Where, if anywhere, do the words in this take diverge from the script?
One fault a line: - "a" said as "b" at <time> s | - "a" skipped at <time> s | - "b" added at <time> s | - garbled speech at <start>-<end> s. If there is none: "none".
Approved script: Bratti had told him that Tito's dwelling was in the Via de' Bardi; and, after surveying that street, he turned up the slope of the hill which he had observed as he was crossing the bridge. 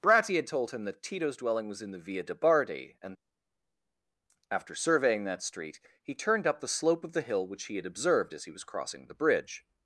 none